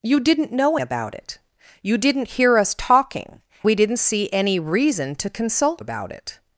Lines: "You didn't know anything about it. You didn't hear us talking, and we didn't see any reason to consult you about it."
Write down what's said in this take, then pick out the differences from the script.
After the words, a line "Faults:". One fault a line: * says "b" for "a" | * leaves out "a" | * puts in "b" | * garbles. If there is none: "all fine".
"You didn't know about it. You didn't hear us talking, we didn't see any reason to consult about it."
Faults:
* leaves out "anything"
* leaves out "and"
* leaves out "you"